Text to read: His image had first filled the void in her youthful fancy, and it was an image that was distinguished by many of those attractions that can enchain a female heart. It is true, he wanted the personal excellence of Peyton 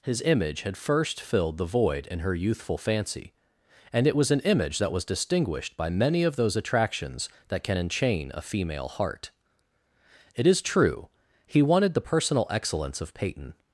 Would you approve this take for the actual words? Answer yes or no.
yes